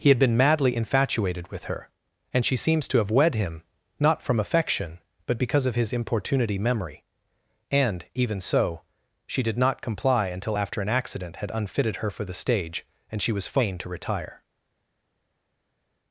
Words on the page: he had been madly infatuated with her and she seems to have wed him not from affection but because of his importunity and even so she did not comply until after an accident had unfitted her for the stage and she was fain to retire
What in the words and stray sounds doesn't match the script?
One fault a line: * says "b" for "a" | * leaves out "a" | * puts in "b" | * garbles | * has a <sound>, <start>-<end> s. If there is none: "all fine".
* puts in "memory"